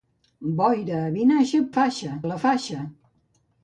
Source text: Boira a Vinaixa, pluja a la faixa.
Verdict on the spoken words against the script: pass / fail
fail